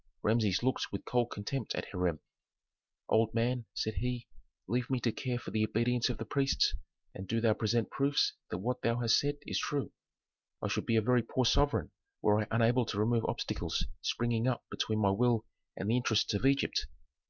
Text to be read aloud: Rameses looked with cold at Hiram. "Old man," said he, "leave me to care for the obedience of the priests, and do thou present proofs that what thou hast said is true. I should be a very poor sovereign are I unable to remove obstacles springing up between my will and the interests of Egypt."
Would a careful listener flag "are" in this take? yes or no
yes